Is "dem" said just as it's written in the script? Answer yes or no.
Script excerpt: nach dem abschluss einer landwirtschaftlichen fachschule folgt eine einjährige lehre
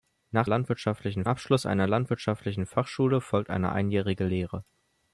no